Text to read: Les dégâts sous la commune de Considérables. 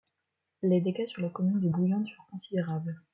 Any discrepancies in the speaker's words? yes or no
yes